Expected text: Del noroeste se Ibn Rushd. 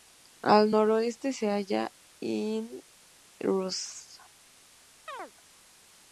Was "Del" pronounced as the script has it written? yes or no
no